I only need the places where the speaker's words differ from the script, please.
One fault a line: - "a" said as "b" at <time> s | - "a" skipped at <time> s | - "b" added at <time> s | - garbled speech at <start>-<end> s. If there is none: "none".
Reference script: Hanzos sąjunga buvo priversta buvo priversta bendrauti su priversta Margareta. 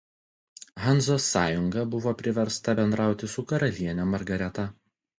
- "buvo priversta" skipped at 2.8 s
- "priversta" said as "karaliene" at 3.5 s